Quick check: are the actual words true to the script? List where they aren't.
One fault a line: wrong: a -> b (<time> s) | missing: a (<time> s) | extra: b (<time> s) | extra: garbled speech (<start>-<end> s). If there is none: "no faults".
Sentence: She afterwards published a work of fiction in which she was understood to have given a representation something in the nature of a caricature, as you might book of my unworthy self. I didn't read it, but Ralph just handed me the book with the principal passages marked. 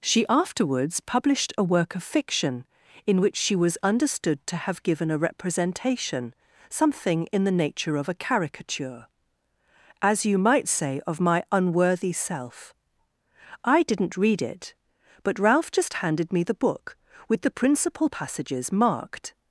wrong: book -> say (10.7 s)